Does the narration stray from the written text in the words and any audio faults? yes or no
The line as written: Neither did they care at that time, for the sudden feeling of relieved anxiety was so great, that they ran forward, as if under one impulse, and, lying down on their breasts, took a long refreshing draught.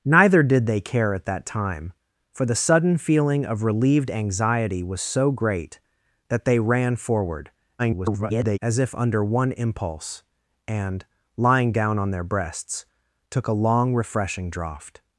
yes